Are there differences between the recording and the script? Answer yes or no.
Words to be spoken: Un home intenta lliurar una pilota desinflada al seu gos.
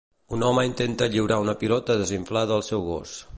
no